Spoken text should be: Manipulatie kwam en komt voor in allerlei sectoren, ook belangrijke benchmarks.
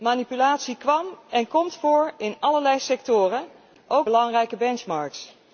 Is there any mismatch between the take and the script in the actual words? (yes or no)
no